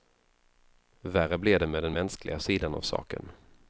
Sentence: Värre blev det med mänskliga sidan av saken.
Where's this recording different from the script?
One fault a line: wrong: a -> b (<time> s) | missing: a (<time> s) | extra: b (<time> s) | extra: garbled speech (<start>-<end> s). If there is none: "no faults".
extra: den (1.8 s)